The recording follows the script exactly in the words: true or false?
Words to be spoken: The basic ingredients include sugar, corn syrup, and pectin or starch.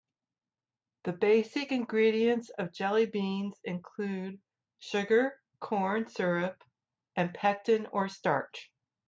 false